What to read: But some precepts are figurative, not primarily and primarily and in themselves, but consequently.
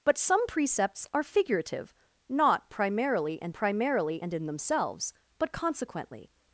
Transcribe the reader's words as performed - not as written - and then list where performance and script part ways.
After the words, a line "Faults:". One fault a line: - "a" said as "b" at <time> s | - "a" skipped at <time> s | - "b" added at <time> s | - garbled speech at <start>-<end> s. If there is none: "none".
But some precepts are figurative, not primarily and primarily and in themselves, but consequently.
Faults:
none